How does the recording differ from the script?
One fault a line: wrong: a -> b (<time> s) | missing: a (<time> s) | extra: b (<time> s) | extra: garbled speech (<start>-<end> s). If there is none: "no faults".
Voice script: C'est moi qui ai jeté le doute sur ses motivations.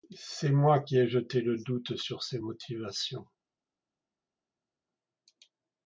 no faults